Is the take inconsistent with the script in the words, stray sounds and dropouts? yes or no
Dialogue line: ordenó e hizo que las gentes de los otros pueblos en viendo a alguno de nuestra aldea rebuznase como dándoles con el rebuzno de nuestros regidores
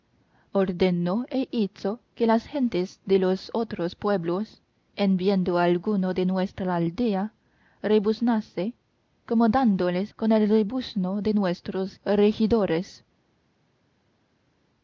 no